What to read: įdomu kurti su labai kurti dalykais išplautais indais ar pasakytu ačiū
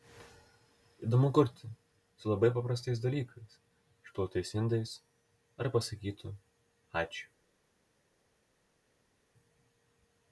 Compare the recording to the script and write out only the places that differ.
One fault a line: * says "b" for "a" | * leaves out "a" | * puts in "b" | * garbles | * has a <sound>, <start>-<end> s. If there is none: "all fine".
* says "paprastais" for "kurti"